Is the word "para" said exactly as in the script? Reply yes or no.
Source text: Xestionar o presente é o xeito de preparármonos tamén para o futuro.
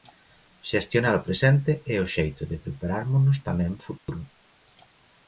no